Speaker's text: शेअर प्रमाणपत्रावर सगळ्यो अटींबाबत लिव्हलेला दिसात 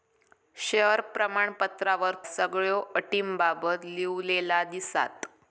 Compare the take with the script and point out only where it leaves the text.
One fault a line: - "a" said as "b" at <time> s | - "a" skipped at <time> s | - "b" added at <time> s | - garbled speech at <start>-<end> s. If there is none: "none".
none